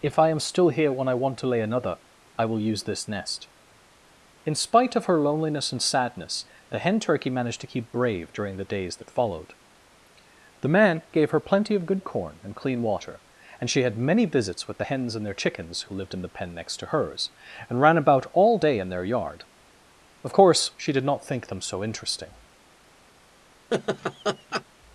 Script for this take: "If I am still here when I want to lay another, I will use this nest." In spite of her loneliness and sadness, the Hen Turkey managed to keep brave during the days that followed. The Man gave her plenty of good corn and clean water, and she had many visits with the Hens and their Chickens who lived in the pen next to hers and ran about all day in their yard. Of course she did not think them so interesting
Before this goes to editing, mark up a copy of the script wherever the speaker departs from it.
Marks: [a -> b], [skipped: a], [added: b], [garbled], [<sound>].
"If I am still here when I want to lay another, I will use this nest." In spite of her loneliness and sadness, the Hen Turkey managed to keep brave during the days that followed. The Man gave her plenty of good corn and clean water, and she had many visits with the Hens and their Chickens who lived in the pen next to hers and ran about all day in their yard. Of course she did not think them so interesting [laugh]